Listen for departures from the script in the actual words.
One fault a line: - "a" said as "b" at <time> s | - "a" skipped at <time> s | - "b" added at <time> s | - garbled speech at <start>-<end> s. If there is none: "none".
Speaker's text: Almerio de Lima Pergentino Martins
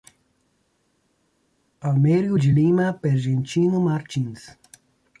none